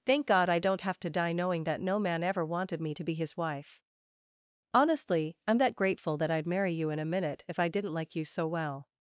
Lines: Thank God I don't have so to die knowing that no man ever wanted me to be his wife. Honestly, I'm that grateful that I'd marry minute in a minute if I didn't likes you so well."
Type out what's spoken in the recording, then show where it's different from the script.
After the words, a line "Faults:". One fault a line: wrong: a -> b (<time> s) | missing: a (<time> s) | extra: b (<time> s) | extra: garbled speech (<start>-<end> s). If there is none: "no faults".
Thank God I don't have to die knowing that no man ever wanted me to be his wife. Honestly, I'm that grateful that I'd marry you in a minute if I didn't like you so well."
Faults:
missing: so (1.0 s)
wrong: minute -> you (6.7 s)
wrong: likes -> like (7.9 s)